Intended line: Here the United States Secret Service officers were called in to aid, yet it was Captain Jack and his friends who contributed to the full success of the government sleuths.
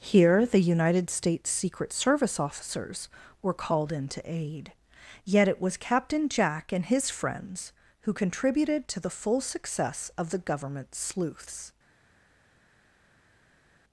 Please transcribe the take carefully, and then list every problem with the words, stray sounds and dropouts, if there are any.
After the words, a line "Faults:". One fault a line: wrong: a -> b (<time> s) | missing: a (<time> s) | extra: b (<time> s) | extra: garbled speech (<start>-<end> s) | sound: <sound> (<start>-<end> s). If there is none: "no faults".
Here the United States Secret Service officers were called in to aid, yet it was Captain Jack and his friends who contributed to the full success of the government sleuths.
Faults:
no faults